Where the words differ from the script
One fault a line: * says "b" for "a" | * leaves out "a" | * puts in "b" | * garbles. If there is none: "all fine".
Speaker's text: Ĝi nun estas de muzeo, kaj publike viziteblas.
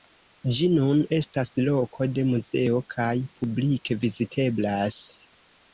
* puts in "loko"